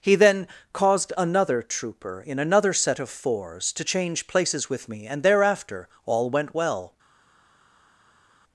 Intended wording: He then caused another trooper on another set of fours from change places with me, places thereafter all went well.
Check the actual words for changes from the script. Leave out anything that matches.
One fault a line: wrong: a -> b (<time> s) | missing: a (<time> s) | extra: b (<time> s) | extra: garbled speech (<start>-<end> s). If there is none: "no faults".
wrong: on -> in (2.2 s)
wrong: from -> to (3.7 s)
wrong: places -> and (5.1 s)